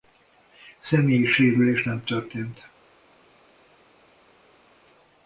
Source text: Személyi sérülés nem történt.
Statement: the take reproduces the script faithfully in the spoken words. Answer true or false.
true